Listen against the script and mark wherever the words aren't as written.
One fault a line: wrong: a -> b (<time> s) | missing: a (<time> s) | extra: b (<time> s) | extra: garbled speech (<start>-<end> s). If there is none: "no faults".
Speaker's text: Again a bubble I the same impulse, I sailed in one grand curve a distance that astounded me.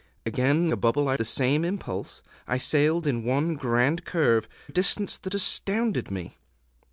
no faults